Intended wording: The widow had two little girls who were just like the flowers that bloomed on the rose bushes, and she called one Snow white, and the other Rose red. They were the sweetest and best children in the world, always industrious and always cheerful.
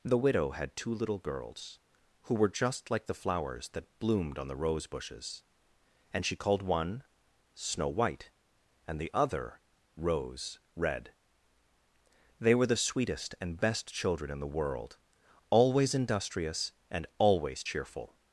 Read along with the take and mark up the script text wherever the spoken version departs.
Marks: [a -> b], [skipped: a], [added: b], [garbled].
The widow had two little girls who were just like the flowers that bloomed on the rose bushes, and she called one Snow white, and the other Rose red. They were the sweetest and best children in the world, always industrious and always cheerful.